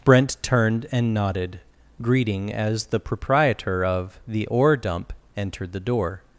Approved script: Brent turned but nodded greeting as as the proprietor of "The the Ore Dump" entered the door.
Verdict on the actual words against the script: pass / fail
fail